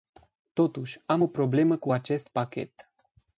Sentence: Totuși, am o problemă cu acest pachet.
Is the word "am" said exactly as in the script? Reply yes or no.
yes